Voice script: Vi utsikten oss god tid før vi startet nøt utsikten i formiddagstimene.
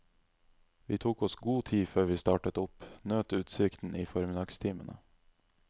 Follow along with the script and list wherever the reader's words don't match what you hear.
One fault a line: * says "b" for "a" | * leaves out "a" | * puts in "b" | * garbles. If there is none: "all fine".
* says "tok" for "utsikten"
* puts in "opp"